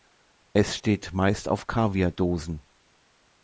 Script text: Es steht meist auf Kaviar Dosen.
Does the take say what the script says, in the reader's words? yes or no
yes